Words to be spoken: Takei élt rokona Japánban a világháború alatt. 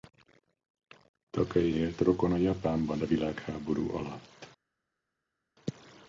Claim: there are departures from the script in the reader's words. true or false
false